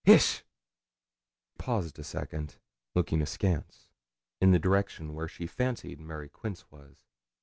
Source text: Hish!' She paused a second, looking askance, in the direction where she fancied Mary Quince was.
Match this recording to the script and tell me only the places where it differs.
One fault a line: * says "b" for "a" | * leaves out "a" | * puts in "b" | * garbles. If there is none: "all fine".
* leaves out "She"